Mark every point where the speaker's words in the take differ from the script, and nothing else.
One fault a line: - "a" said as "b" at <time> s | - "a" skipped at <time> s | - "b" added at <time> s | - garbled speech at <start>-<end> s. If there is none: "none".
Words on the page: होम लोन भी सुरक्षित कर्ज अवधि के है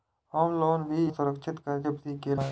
none